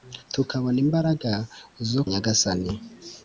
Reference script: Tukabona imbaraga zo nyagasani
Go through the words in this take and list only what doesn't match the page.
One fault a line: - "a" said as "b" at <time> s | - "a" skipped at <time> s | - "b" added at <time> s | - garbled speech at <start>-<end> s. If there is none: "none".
none